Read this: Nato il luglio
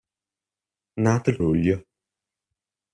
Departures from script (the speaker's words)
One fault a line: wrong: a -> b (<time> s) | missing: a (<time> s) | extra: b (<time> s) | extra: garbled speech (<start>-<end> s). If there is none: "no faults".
no faults